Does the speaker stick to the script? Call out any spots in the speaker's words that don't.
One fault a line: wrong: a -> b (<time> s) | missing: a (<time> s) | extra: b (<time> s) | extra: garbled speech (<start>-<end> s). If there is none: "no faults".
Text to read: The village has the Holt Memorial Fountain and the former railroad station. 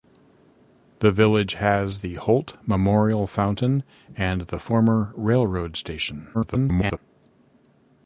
extra: garbled speech (6.3-7.0 s)